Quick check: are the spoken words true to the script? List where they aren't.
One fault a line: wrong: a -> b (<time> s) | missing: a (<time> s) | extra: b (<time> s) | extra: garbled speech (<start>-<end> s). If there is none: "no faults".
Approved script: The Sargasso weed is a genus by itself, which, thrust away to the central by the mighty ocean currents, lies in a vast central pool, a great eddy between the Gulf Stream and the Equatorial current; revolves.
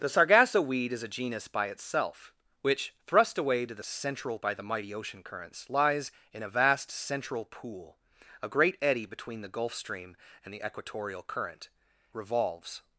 no faults